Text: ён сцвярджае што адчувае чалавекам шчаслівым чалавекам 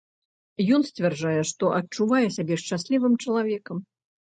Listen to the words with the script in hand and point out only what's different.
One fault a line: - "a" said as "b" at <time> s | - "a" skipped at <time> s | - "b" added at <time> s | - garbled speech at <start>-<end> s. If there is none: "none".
- "чалавекам" said as "сябе" at 2.4 s